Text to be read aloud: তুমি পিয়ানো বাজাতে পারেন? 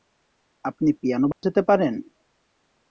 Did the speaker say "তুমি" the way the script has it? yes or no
no